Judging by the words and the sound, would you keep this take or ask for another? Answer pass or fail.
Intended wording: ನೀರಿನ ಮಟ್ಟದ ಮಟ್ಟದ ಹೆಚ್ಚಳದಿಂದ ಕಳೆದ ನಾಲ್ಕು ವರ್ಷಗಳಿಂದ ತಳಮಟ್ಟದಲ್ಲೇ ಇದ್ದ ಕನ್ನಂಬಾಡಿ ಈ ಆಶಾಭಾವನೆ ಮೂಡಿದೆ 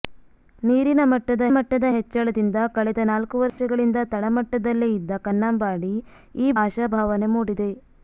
fail